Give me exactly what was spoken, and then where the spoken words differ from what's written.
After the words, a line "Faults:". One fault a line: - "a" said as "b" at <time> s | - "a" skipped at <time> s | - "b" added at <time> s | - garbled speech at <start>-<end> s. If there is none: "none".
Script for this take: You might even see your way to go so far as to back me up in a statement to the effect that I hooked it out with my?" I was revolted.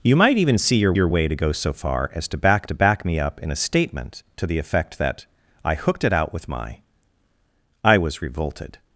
You might even see your your way to go so far as to back to back me up in a statement to the effect that I hooked it out with my?" I was revolted.
Faults:
- "your" added at 0.9 s
- "to back" added at 2.6 s